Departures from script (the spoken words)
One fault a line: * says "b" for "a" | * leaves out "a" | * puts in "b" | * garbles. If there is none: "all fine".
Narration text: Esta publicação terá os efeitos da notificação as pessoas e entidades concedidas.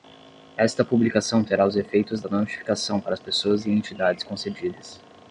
* puts in "para"